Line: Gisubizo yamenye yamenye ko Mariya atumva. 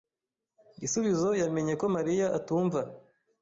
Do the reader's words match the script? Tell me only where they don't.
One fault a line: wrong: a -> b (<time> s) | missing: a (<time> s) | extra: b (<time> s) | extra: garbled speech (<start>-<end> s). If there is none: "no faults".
missing: yamenye (1.7 s)